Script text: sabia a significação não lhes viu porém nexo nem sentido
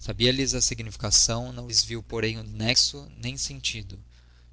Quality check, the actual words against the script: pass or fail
fail